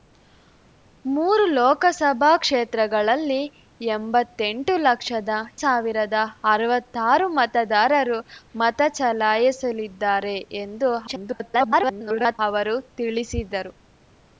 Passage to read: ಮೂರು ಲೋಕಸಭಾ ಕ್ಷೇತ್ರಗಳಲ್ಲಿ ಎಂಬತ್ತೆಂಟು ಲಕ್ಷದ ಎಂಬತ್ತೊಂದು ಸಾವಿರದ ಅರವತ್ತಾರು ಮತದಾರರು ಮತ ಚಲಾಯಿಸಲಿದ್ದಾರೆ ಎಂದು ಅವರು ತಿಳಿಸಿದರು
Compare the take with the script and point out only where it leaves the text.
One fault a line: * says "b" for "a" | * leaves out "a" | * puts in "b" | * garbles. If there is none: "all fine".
* leaves out "ಎಂಬತ್ತೊಂದು"
* garbles